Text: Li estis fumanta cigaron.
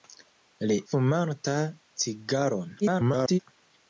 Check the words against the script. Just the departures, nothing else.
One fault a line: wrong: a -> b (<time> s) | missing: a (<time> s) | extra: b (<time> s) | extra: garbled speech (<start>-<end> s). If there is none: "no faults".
missing: estis (0.8 s)
extra: garbled speech (2.8-3.4 s)